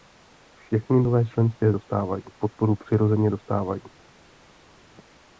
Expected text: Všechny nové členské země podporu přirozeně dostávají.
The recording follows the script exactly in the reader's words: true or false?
false